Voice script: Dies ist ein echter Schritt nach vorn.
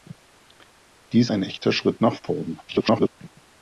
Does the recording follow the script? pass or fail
fail